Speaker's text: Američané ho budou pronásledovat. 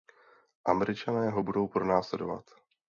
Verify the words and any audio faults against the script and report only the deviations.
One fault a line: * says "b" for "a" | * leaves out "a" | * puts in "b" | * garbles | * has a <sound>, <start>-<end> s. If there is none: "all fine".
all fine